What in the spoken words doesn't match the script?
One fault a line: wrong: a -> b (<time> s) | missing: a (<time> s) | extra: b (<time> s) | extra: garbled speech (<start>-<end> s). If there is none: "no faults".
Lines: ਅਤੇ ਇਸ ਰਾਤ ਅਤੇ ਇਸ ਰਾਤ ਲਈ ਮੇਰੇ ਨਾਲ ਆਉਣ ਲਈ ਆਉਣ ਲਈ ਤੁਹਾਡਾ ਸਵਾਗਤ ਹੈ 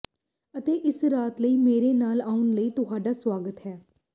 missing: ਅਤੇ ਇਸ ਰਾਤ (1.4 s)
missing: ਆਉਣ ਲਈ (2.7 s)